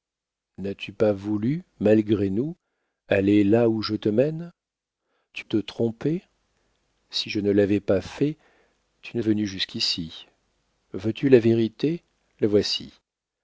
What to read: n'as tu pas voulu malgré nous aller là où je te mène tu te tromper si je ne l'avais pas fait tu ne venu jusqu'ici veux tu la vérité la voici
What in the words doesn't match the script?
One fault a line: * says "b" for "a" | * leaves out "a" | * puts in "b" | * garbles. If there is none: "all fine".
all fine